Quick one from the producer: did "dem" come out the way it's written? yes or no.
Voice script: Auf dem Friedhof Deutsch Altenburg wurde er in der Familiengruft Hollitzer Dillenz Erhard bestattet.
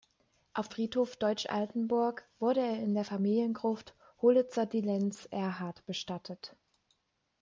no